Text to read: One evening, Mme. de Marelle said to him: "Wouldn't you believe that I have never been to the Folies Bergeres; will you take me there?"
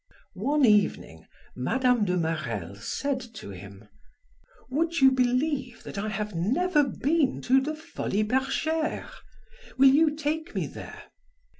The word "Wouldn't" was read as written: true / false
false